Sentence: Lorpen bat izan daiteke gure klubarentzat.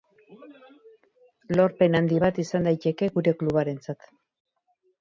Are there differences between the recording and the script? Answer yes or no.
yes